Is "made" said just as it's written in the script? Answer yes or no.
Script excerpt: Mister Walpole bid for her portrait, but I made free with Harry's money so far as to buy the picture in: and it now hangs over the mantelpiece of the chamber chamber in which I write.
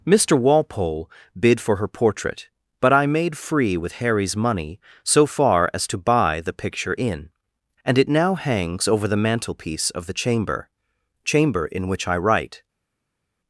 yes